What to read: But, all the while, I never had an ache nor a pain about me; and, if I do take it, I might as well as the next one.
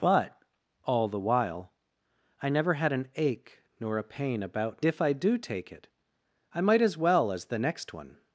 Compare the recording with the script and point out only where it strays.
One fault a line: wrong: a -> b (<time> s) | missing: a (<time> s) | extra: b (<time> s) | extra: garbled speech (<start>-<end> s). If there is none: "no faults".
missing: me and (4.8 s)